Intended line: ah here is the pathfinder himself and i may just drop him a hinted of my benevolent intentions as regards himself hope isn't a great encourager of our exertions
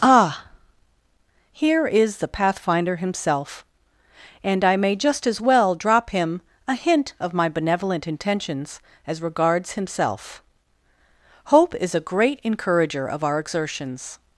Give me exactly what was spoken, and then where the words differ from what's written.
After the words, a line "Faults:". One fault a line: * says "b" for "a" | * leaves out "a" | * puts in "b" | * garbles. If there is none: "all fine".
ah here is the pathfinder himself and i may just as well drop him a hint of my benevolent intentions as regards himself hope is a great encourager of our exertions
Faults:
* puts in "as well"
* says "hint" for "hinted"
* says "is" for "isn't"